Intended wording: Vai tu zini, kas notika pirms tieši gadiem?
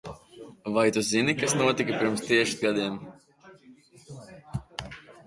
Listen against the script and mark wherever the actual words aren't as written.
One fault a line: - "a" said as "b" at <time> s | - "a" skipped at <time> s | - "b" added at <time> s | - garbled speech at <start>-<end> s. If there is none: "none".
none